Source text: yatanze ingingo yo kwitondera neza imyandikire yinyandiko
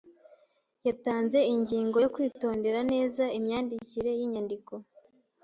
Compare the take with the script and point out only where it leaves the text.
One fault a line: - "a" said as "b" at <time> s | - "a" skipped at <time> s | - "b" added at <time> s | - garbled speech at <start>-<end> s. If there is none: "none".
none